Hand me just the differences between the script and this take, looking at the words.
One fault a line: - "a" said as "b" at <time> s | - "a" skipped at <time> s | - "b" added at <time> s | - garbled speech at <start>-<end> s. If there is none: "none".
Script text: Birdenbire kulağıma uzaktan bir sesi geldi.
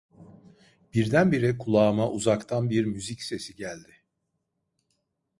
- "müzik" added at 2.9 s